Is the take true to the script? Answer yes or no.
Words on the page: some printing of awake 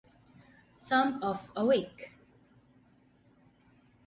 no